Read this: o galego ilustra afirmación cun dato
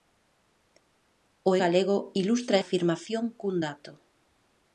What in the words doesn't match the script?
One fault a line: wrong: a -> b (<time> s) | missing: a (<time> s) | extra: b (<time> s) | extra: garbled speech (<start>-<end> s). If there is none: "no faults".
no faults